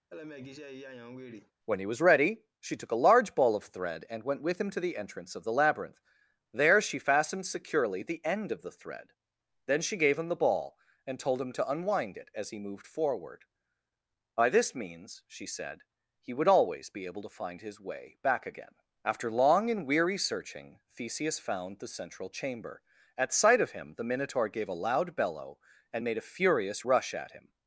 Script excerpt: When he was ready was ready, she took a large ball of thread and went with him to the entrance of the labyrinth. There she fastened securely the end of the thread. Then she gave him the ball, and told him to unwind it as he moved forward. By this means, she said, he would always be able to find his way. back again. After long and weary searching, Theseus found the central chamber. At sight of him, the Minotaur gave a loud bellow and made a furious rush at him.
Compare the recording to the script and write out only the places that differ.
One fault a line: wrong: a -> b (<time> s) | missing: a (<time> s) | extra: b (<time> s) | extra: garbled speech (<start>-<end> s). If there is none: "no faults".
missing: was ready (2.4 s)